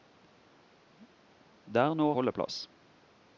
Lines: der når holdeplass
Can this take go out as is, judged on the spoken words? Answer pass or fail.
pass